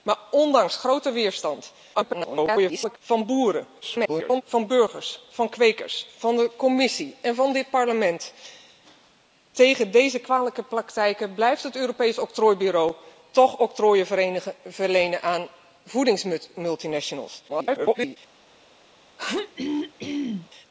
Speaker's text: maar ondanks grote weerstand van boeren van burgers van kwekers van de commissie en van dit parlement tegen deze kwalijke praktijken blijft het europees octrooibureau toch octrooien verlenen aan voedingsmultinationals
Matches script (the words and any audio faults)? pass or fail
fail